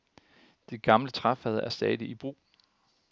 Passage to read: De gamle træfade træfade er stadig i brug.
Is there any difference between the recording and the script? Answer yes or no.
yes